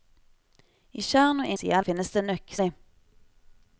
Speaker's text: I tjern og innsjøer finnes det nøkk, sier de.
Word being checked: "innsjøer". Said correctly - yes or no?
no